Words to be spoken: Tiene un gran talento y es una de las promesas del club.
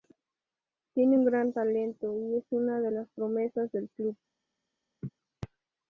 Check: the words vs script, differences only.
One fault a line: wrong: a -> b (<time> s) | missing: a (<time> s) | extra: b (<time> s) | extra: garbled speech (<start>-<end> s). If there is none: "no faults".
no faults